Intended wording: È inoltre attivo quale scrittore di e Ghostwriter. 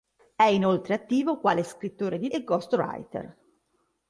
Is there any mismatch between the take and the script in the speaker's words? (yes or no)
no